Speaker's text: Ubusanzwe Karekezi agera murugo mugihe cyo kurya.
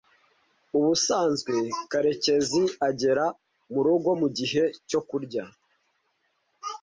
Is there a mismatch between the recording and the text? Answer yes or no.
no